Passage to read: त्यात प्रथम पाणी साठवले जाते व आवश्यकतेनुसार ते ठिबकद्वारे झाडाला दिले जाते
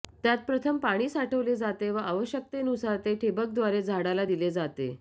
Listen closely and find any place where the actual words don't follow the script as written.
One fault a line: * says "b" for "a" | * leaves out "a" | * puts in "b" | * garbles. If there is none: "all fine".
all fine